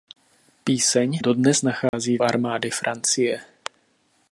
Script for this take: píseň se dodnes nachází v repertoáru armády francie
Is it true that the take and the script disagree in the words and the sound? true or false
true